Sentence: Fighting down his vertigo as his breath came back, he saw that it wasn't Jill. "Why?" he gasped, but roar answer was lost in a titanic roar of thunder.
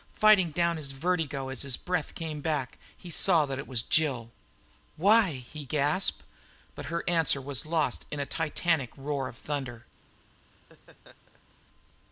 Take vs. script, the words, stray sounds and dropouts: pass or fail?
fail